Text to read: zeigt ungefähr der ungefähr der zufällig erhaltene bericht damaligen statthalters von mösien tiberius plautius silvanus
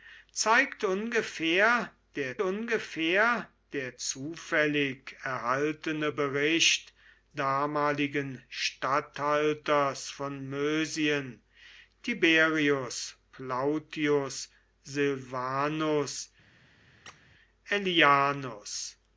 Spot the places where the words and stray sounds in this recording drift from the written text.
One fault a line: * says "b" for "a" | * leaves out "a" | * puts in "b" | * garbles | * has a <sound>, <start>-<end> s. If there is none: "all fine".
* has a squeak, 17.1-17.2 s